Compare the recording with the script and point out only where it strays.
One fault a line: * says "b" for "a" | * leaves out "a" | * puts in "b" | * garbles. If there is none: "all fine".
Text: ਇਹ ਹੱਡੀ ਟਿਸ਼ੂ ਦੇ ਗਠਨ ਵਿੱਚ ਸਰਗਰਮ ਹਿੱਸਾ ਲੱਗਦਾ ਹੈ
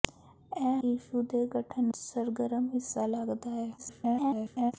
* leaves out "ਹੱਡੀ"
* leaves out "ਵਿੱਚ"
* garbles